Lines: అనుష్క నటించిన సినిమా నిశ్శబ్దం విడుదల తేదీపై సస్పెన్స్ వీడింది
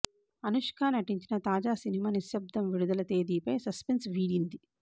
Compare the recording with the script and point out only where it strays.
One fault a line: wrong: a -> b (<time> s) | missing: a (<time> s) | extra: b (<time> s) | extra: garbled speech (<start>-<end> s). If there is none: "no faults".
extra: తాజా (1.4 s)